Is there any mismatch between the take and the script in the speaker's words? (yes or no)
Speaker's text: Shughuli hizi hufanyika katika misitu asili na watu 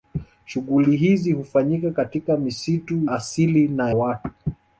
no